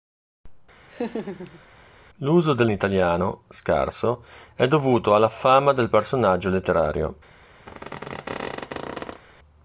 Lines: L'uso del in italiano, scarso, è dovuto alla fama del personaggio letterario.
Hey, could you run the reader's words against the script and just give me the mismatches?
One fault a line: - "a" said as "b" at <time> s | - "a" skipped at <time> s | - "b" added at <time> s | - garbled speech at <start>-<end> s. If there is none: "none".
none